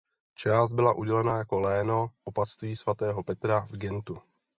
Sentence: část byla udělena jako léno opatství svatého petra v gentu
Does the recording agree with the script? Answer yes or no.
yes